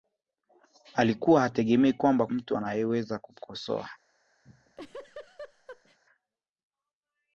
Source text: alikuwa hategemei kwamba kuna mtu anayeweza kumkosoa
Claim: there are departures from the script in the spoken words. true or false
true